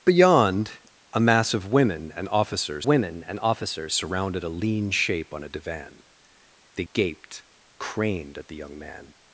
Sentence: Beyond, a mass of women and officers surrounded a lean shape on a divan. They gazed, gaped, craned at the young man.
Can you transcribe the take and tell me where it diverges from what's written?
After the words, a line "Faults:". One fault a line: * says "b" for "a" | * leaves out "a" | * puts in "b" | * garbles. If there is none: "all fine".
Beyond, a mass of women and officers women and officers surrounded a lean shape on a divan. They gaped, craned at the young man.
Faults:
* puts in "women and officers"
* leaves out "gazed"